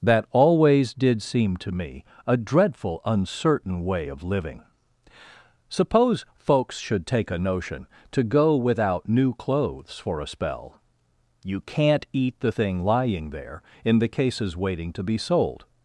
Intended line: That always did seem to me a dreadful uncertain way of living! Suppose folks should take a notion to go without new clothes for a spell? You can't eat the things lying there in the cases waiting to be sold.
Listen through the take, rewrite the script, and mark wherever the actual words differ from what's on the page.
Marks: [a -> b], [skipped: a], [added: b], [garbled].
That always did seem to me a dreadful uncertain way of living! Suppose folks should take a notion to go without new clothes for a spell? You can't eat the [things -> thing] lying there in the cases waiting to be sold.